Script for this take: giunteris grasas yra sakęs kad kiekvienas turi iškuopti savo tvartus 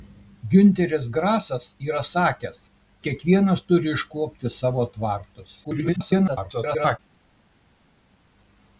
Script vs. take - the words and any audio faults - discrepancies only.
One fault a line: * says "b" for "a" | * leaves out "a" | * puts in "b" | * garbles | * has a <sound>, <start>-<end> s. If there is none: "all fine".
* leaves out "kad"
* garbles